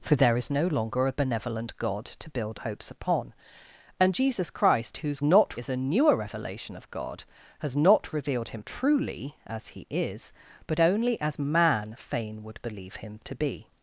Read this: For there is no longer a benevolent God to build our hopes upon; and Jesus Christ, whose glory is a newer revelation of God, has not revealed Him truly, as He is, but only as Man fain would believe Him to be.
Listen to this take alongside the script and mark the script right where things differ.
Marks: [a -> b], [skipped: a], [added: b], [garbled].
For there is no longer a benevolent God to build [skipped: our] hopes upon; and Jesus Christ, whose [glory -> not] is a newer revelation of God, has not revealed Him truly, as He is, but only as Man fain would believe Him to be.